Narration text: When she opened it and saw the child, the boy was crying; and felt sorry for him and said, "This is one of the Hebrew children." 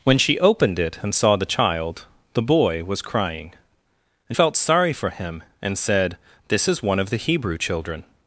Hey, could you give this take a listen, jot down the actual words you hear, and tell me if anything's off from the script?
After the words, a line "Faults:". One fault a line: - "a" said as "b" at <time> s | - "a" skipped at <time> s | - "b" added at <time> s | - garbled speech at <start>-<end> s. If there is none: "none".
When she opened it and saw the child, the boy was crying; and felt sorry for him and said, "This is one of the Hebrew children."
Faults:
none